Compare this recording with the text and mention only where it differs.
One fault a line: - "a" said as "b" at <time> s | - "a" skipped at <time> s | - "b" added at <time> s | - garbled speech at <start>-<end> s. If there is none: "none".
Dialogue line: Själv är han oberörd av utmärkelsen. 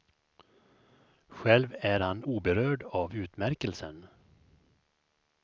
none